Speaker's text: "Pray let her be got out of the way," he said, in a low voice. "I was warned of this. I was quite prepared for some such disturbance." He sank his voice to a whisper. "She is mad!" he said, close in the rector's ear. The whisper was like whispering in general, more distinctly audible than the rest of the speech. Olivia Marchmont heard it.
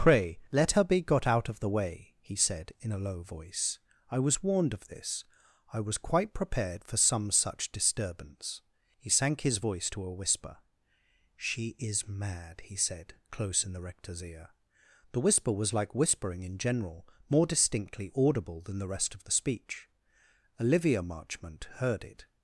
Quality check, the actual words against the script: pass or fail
pass